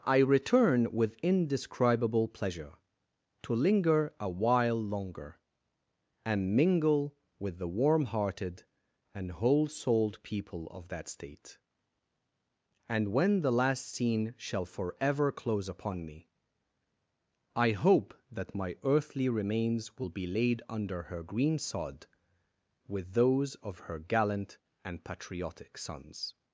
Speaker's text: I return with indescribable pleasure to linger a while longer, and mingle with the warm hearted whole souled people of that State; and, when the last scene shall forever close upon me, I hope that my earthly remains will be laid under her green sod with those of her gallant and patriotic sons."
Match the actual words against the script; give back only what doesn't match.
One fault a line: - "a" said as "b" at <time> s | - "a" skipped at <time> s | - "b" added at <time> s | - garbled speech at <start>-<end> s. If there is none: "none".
- "and" added at 9.1 s